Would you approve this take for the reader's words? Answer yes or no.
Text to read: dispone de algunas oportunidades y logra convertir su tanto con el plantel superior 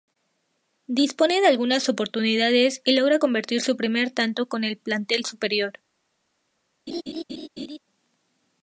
no